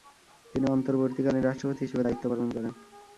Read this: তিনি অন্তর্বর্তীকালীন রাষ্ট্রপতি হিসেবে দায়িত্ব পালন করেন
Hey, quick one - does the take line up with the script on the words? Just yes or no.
yes